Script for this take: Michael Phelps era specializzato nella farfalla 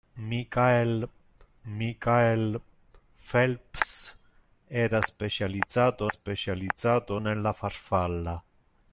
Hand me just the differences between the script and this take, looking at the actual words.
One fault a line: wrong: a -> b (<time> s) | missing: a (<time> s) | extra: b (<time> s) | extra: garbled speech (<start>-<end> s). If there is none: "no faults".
extra: michael (1.6 s)
extra: specializzato (6.1 s)